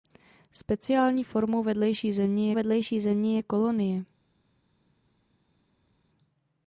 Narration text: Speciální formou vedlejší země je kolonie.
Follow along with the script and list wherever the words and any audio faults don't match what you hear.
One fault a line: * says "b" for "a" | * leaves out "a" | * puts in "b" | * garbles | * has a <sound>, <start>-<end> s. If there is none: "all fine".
* puts in "vedlejší země"